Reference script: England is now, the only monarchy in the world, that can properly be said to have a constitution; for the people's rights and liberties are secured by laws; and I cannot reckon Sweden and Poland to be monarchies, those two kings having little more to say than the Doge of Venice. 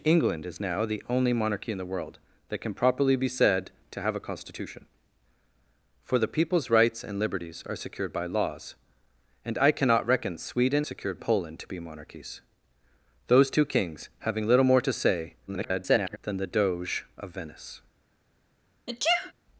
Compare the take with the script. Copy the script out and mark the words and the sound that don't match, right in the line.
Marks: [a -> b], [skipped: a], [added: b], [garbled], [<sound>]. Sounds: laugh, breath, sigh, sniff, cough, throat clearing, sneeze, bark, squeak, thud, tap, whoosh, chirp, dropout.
England is now, the only monarchy in the world, that can properly be said to have a constitution; for the people's rights and liberties are secured by laws; and I cannot reckon Sweden [and -> secured] Poland to be monarchies, those two kings having little more to say [garbled] than the Doge of Venice. [sneeze]